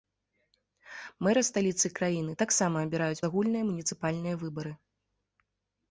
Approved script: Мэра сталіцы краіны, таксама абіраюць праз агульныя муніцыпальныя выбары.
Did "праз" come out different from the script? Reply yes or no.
yes